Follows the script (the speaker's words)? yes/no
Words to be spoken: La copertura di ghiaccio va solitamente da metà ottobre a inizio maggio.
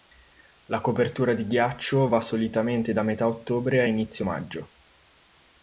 yes